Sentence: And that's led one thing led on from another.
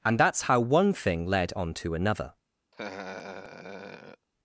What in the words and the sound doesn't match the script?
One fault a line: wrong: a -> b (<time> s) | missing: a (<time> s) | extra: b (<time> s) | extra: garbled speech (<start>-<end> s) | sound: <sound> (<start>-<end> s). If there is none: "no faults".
wrong: led -> how (0.4 s)
wrong: from -> to (1.7 s)
sound: laugh (2.7-4.3 s)